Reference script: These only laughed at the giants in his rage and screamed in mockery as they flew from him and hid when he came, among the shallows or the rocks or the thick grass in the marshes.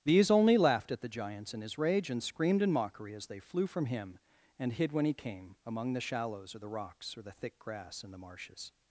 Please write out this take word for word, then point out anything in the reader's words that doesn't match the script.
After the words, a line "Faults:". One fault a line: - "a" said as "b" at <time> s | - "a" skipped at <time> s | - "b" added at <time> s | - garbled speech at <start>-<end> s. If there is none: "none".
These only laughed at the giants in his rage and screamed in mockery as they flew from him and hid when he came, among the shallows or the rocks or the thick grass in the marshes.
Faults:
none